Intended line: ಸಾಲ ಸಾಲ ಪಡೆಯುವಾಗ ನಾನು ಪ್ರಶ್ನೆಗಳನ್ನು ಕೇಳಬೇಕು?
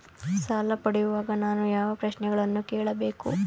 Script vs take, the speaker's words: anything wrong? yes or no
yes